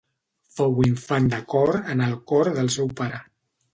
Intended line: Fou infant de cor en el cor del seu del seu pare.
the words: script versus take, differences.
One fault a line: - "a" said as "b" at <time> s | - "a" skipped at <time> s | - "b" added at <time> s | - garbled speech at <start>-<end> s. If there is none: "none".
- "del seu" skipped at 2.9 s